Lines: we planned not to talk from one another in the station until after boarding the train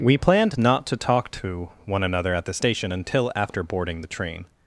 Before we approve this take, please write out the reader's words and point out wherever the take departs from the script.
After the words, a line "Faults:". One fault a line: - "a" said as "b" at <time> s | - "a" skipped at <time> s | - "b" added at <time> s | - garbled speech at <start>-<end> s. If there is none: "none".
we planned not to talk to one another at the station until after boarding the train
Faults:
- "from" said as "to" at 1.3 s
- "in" said as "at" at 2.3 s